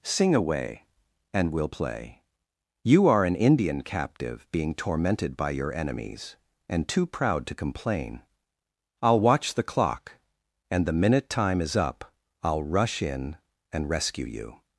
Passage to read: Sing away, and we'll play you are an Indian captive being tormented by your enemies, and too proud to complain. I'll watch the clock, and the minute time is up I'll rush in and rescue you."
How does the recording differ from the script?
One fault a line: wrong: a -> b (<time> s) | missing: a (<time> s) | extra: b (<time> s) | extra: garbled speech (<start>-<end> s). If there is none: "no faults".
no faults